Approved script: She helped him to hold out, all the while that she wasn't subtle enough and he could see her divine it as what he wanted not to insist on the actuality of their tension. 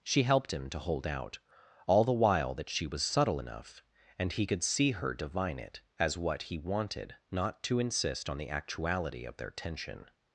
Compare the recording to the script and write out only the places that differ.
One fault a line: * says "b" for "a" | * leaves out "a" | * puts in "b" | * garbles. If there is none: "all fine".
* says "was" for "wasn't"